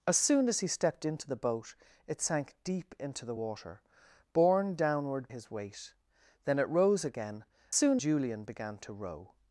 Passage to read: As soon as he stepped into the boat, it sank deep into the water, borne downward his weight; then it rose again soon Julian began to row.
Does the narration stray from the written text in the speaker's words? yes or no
no